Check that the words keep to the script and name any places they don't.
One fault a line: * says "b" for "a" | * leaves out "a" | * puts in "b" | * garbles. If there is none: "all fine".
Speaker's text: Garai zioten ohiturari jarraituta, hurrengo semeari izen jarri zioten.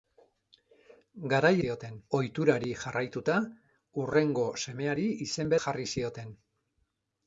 all fine